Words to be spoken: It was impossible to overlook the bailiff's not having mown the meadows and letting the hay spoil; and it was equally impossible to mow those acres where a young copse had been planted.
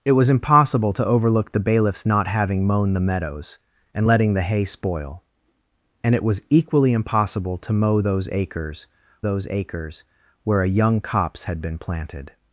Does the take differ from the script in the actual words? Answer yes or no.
yes